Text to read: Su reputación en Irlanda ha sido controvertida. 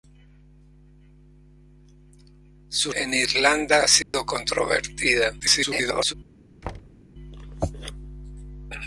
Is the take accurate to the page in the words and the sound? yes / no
no